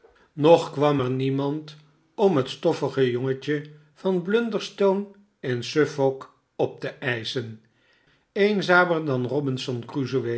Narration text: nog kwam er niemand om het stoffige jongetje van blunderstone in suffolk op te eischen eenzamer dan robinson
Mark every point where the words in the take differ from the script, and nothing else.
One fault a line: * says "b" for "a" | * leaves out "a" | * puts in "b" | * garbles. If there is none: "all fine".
all fine